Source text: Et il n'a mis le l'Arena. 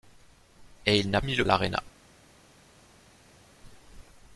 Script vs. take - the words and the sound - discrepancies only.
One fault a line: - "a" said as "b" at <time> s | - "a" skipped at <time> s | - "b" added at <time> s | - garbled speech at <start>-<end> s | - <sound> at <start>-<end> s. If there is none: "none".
none